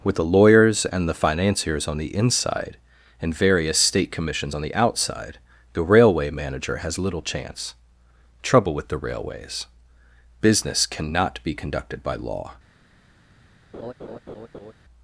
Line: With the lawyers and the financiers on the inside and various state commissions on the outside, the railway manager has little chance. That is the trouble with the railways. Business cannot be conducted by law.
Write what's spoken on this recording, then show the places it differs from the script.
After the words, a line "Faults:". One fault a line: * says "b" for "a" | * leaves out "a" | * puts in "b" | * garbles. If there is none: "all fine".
With the lawyers and the financiers on the inside and various state commissions on the outside, the railway manager has little chance. trouble with the railways. Business cannot be conducted by law.
Faults:
* leaves out "That is the"